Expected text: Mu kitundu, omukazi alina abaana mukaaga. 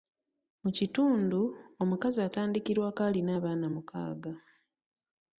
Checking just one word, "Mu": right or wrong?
right